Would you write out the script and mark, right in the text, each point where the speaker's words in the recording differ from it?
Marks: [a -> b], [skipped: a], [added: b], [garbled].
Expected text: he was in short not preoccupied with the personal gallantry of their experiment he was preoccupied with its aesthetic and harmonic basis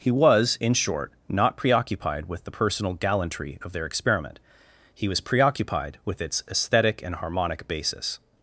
he was in short not preoccupied with the personal gallantry of their experiment he was preoccupied with its aesthetic and harmonic basis